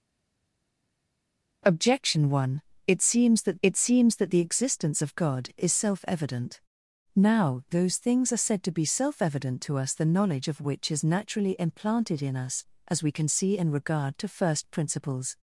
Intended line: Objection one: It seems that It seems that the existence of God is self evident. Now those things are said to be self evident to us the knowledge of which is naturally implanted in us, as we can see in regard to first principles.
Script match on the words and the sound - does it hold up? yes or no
yes